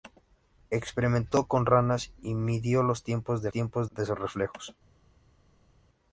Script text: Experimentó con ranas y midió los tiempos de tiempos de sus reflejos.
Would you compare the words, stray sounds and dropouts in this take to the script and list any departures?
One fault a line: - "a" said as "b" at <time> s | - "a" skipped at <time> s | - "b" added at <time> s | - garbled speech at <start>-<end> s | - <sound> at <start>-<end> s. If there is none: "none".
none